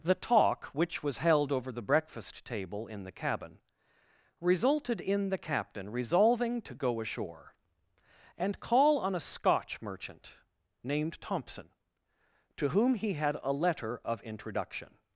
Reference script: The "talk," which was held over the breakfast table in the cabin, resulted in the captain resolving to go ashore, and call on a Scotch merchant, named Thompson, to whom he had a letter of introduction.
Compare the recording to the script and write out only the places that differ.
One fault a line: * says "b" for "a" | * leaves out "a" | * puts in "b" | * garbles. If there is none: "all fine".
all fine